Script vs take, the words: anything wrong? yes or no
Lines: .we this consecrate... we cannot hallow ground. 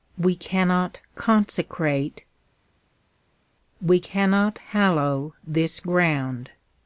yes